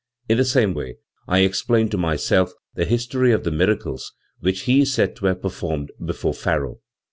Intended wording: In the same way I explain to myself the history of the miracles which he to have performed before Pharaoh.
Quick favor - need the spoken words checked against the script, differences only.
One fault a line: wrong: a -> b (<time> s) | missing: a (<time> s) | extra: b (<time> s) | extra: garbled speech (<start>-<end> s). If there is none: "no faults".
extra: is said (4.8 s)